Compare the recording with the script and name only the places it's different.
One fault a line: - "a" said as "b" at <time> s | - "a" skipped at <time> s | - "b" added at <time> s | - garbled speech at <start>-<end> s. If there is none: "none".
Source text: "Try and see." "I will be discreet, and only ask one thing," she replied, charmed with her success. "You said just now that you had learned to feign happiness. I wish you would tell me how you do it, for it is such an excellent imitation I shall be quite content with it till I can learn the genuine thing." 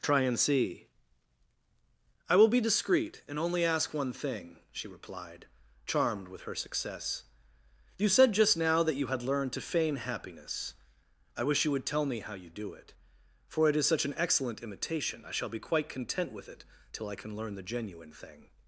none